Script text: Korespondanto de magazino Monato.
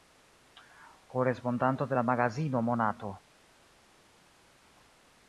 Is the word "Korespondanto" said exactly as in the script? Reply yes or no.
yes